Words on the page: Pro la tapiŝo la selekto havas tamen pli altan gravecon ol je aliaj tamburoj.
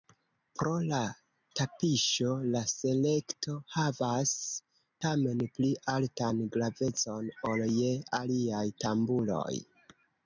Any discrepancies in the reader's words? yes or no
no